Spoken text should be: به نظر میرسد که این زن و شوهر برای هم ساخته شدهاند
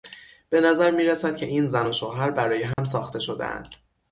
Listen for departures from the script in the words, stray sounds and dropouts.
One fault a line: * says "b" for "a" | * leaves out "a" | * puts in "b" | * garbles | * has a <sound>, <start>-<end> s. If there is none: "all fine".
* has a dropout, 2.7-2.8 s